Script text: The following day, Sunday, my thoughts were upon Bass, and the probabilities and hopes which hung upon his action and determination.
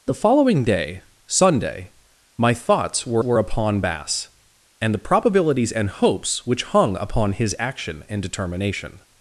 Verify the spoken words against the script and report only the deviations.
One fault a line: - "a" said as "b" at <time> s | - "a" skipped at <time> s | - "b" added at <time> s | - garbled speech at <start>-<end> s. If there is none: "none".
- "were" added at 3.2 s